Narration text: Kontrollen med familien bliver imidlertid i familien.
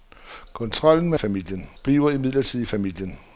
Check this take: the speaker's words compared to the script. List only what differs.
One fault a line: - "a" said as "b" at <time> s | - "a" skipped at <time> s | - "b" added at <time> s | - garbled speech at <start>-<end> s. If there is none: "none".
none